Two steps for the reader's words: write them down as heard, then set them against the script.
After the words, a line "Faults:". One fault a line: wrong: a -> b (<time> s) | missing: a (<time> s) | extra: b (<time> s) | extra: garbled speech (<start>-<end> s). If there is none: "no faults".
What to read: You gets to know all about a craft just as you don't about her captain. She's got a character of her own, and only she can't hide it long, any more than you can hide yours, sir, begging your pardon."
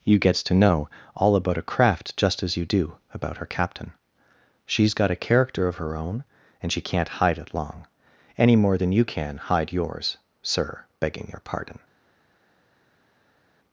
You gets to know all about a craft just as you do about her captain. She's got a character of her own, and she can't hide it long, any more than you can hide yours, sir, begging your pardon."
Faults:
wrong: don't -> do (2.6 s)
missing: only (6.7 s)